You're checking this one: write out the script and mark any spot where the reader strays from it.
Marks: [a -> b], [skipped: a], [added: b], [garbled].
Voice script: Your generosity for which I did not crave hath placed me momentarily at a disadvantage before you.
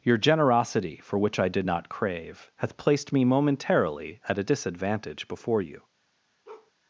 Your generosity for which I did not crave hath placed me momentarily at a disadvantage before you.